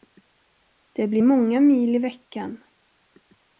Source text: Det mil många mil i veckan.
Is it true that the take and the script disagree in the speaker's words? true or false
true